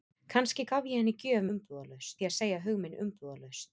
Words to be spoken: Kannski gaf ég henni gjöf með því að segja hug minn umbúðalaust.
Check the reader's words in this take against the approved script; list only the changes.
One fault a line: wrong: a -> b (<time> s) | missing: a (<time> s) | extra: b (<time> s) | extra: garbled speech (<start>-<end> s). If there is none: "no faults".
wrong: með -> umbúðalaust (1.5 s)